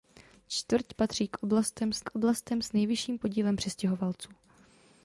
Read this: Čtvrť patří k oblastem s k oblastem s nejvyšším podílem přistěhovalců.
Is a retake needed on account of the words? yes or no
no